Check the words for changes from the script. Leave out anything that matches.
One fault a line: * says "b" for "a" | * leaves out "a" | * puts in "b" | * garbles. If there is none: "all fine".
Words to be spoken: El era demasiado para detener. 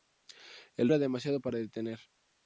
all fine